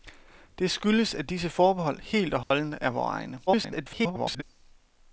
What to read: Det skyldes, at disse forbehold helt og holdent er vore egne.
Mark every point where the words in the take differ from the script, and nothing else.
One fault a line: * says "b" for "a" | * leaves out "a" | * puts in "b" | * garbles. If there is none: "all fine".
* garbles